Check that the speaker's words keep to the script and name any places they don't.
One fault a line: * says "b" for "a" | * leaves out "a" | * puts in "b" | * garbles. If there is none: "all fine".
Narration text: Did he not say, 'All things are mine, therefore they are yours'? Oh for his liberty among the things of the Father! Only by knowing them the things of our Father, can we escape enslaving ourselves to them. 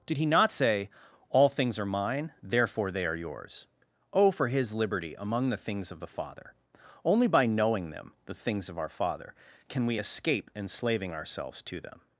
all fine